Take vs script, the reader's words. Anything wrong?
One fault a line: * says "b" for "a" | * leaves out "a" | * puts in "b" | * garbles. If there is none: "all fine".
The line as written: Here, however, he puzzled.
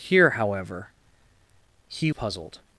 all fine